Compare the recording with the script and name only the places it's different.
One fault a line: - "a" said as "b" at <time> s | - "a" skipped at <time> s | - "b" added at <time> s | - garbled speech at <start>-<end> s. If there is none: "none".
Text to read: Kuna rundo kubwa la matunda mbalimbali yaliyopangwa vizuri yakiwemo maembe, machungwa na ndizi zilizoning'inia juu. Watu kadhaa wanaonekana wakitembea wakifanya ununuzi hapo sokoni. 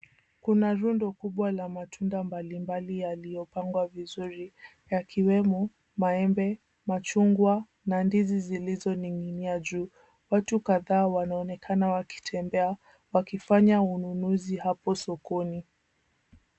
none